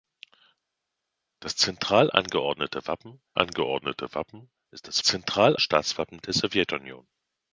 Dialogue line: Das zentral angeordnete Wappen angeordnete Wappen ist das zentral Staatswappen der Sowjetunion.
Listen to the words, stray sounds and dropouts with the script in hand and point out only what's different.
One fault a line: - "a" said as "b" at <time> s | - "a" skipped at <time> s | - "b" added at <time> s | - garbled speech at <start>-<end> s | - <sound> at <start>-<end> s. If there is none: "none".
none